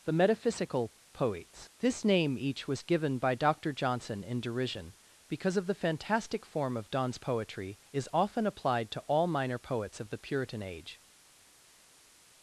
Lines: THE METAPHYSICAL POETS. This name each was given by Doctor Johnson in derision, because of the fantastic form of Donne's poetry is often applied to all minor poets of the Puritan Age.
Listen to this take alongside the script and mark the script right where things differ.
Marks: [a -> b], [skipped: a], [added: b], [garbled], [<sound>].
THE METAPHYSICAL POETS. This name each was given by Doctor Johnson in derision, because of the fantastic form of Donne's poetry is often applied to all minor poets of the Puritan Age.